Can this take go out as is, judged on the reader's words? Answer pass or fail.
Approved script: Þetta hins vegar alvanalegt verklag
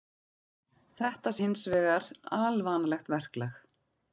pass